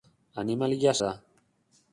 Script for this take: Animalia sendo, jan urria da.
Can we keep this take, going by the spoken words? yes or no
no